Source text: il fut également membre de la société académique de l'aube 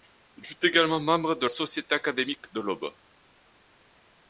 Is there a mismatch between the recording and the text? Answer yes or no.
yes